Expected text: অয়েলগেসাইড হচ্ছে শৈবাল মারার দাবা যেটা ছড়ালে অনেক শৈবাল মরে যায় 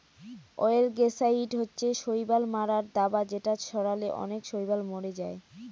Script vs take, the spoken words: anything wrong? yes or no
no